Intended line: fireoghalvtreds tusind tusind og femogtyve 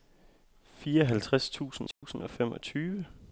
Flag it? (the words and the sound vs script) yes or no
yes